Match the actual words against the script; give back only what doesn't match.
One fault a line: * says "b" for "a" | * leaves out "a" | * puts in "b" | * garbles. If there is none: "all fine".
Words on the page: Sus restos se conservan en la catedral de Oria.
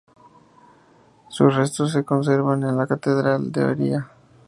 all fine